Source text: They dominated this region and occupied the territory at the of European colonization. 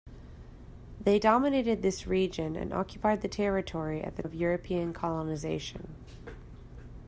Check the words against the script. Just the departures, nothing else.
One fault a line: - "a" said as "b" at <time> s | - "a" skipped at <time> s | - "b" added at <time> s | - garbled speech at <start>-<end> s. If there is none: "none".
none